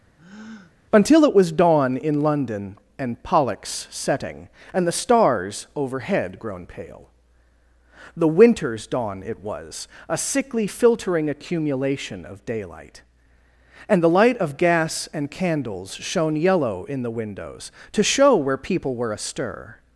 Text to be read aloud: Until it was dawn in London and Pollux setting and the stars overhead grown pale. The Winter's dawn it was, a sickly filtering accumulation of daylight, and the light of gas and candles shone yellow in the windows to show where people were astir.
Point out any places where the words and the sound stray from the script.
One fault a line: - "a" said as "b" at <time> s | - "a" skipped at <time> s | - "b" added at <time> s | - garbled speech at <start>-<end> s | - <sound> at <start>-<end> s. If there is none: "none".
- breath at 0.2-0.8 s